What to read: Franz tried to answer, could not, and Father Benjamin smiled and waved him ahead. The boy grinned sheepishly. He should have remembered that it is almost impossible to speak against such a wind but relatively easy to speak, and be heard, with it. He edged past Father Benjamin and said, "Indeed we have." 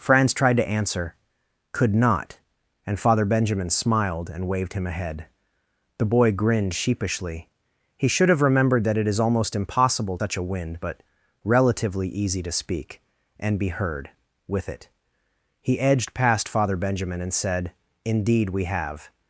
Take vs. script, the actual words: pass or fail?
fail